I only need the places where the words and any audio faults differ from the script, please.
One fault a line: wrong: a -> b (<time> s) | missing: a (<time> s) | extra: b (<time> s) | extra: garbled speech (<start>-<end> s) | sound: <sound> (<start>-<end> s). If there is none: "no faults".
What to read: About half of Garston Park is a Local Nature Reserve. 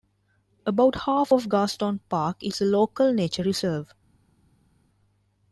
no faults